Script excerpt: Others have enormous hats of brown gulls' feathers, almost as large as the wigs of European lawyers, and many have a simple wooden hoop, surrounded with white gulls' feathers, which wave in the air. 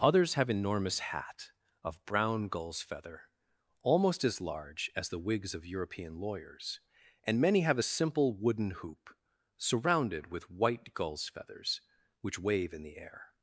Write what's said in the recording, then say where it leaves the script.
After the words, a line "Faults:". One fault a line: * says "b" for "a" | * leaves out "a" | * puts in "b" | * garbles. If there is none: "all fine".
Others have enormous hat of brown gulls' feather, almost as large as the wigs of European lawyers, and many have a simple wooden hoop, surrounded with white gulls' feathers, which wave in the air.
Faults:
* says "hat" for "hats"
* says "feather" for "feathers"